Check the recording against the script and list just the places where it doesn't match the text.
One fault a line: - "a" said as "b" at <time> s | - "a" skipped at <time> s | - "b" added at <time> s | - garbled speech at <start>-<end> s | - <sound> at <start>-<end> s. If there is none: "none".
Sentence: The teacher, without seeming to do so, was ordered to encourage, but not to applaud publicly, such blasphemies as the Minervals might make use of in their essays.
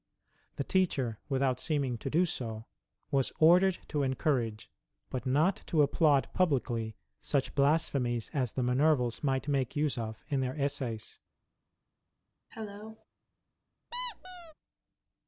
- cough at 12.5-13.1 s
- squeak at 13.9-14.5 s